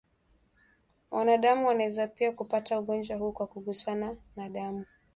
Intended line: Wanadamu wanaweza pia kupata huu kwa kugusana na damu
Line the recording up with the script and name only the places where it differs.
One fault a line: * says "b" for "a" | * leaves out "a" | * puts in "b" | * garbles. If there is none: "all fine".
* puts in "ugonjwa"